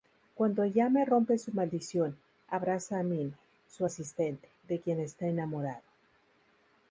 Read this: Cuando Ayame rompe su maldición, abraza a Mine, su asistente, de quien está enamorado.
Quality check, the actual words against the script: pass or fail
pass